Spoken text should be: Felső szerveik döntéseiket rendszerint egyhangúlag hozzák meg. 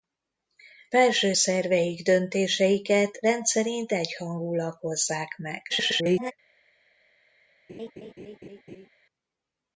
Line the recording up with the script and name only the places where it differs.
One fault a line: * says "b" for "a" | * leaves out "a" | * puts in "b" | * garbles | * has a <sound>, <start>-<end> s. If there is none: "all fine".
* garbles
* has a laugh, 7.7-8.9 s